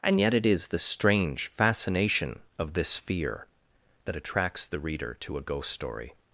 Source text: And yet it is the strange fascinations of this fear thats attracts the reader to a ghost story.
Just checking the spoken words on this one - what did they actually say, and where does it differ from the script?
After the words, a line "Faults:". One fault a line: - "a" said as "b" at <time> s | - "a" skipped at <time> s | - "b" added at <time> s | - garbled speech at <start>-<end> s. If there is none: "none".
And yet it is the strange fascination of this fear that attracts the reader to a ghost story.
Faults:
- "fascinations" said as "fascination" at 1.6 s
- "thats" said as "that" at 4.0 s